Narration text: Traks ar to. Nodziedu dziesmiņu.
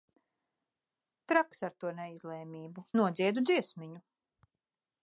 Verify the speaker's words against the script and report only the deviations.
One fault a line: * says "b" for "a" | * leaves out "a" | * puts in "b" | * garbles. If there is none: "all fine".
* puts in "neizlēmību"